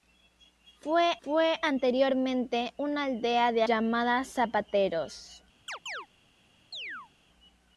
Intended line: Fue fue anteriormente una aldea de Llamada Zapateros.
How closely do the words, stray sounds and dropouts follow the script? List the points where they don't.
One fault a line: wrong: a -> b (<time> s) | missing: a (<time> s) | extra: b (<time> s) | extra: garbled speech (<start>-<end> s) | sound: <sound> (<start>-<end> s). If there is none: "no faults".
sound: chirp (5.7-6.1 s)
sound: chirp (6.7-7.1 s)